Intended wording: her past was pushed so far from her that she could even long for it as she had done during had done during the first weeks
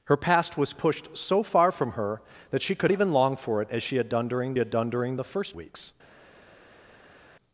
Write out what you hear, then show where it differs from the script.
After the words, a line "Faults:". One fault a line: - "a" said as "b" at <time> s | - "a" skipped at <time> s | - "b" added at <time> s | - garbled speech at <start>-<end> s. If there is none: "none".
her past was pushed so far from her that she could even long for it as she had done during had done during the first weeks
Faults:
none